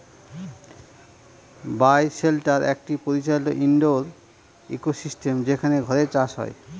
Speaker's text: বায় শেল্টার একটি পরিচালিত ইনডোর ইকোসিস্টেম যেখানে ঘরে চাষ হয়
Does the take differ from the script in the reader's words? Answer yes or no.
no